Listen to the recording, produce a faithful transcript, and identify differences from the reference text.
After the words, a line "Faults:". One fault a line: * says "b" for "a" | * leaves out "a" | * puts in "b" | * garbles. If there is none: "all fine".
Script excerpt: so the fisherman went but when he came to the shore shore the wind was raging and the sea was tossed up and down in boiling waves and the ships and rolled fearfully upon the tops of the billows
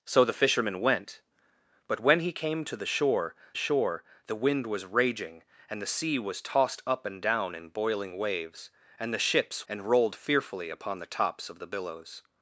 so the fisherman went but when he came to the shore shore the wind was raging and the sea was tossed up and down in boiling waves and the ships and rolled fearfully upon the tops of the billows
Faults:
all fine